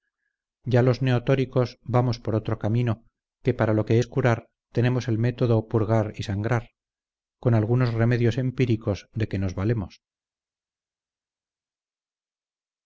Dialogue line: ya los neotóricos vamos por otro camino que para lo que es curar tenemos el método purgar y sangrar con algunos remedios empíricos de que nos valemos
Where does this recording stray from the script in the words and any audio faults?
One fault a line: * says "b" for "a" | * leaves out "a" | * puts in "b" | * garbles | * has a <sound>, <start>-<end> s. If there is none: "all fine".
all fine